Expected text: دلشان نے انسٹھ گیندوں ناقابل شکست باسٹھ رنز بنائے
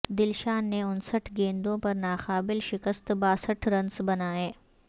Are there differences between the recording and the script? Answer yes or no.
yes